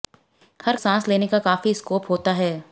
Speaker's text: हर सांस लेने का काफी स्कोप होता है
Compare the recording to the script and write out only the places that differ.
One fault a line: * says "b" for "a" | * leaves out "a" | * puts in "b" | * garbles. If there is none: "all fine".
all fine